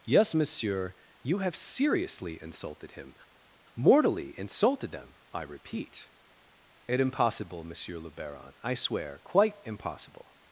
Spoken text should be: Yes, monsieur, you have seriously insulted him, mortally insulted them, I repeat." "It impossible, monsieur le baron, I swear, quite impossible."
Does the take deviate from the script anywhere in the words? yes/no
no